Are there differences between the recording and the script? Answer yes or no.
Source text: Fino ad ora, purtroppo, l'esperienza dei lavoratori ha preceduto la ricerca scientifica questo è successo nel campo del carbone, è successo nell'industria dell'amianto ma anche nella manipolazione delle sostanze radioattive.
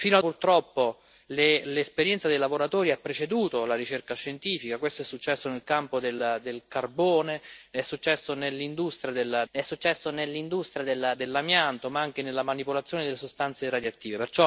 yes